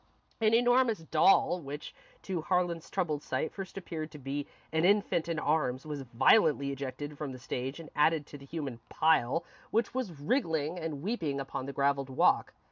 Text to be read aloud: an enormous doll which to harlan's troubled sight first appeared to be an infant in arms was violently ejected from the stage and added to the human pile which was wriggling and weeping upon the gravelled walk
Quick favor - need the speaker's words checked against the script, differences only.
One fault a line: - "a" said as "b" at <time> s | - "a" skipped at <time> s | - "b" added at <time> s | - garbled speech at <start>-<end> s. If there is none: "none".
none